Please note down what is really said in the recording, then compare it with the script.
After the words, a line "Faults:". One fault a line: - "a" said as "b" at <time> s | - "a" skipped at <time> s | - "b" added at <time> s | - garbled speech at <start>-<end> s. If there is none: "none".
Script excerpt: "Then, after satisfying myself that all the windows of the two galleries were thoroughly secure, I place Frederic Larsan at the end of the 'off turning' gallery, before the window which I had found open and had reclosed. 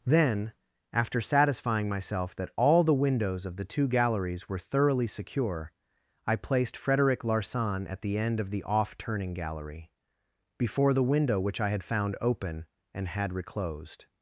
"Then, after satisfying myself that all the windows of the two galleries were thoroughly secure, I placed Frederic Larsan at the end of the 'off turning' gallery, before the window which I had found open and had reclosed.
Faults:
- "place" said as "placed" at 6.4 s